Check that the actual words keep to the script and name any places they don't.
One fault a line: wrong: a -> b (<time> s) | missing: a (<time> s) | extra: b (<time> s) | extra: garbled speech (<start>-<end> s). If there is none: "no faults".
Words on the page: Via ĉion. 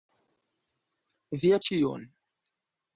no faults